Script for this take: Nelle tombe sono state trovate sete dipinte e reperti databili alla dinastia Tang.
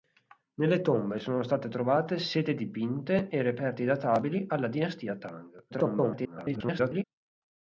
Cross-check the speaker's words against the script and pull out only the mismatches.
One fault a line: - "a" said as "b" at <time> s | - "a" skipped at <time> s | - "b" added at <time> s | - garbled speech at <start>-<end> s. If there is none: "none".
- garbled speech at 5.7-7.0 s